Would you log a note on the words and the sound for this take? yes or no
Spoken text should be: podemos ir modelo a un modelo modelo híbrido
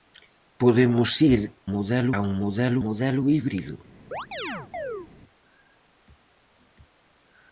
yes